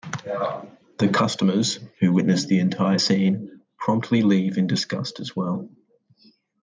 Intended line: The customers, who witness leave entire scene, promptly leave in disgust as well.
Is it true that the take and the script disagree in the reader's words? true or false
true